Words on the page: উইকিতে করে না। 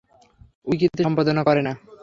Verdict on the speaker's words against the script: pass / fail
fail